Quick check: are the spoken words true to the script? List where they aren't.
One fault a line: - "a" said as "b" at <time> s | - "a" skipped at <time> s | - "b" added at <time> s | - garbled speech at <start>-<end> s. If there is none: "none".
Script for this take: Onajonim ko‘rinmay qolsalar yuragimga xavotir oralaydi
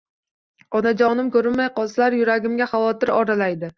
none